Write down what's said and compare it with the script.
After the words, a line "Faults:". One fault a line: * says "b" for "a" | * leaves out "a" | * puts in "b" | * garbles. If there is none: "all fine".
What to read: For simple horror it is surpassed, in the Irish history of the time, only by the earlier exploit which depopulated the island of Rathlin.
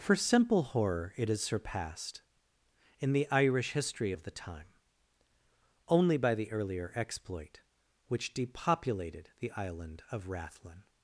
For simple horror it is surpassed, in the Irish history of the time, only by the earlier exploit which depopulated the island of Rathlin.
Faults:
all fine